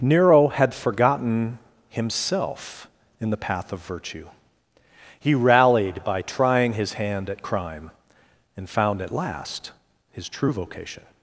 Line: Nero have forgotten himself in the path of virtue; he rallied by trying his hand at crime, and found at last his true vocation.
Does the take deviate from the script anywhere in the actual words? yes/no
yes